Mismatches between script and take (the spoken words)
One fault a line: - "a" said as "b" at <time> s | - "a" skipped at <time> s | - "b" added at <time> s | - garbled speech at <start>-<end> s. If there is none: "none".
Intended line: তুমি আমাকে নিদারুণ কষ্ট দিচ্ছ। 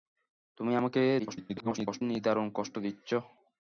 - garbled speech at 1.2-2.0 s